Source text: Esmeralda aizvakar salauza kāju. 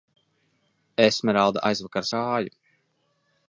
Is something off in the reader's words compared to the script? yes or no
yes